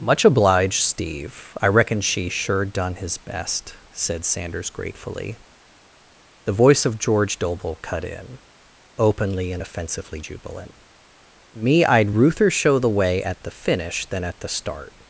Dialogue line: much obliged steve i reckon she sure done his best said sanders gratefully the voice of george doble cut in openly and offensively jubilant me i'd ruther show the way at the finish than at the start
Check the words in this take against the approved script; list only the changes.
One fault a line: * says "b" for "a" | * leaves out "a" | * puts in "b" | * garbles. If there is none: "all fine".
all fine